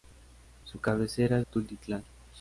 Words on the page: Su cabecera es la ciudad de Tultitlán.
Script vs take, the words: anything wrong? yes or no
yes